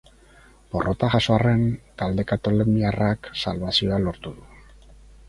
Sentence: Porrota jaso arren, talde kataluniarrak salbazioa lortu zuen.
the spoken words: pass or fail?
fail